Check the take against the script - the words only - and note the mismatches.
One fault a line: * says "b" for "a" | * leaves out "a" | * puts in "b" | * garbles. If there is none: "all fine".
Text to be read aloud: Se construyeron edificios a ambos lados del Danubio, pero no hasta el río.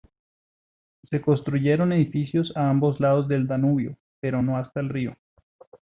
all fine